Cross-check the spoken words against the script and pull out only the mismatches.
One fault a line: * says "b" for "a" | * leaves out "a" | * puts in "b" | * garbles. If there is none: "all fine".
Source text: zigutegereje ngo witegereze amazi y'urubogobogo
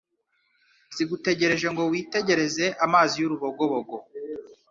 all fine